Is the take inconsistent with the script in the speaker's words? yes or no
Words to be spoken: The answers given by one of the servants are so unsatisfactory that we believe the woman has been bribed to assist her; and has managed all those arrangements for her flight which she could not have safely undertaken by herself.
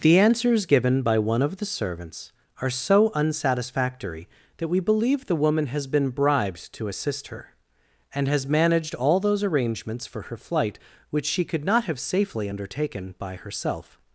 no